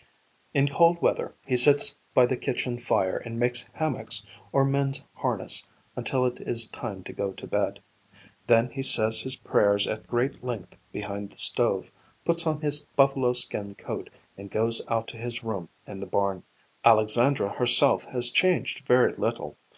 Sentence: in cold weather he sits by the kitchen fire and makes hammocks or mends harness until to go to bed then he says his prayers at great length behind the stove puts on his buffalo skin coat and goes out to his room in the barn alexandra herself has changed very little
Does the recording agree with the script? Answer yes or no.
no